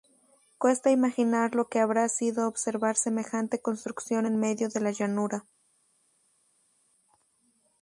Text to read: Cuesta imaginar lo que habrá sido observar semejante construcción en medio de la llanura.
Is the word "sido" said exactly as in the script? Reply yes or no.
yes